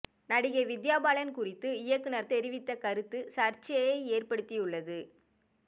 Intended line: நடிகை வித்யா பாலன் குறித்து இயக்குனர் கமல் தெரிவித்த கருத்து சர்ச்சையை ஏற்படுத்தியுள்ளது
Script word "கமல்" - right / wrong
wrong